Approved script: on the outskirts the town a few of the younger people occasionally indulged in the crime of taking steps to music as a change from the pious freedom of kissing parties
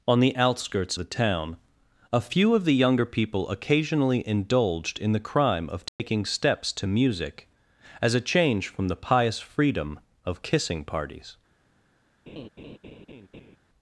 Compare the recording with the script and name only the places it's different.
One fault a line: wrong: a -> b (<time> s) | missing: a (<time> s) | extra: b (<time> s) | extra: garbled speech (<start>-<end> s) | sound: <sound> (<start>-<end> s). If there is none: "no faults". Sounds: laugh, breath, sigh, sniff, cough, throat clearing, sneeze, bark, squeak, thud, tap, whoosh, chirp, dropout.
sound: dropout (5.9-6.0 s)
sound: laugh (12.3-13.6 s)